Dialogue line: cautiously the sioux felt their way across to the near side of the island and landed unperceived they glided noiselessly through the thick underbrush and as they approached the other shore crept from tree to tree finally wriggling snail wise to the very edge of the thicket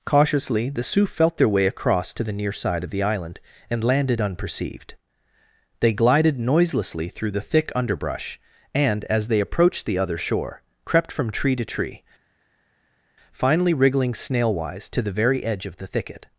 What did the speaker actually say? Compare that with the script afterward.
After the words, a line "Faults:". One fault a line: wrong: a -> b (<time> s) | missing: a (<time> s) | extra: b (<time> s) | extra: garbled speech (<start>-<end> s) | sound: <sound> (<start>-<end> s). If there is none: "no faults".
cautiously the sioux felt their way across to the near side of the island and landed unperceived they glided noiselessly through the thick underbrush and as they approached the other shore crept from tree to tree finally wriggling snail wise to the very edge of the thicket
Faults:
no faults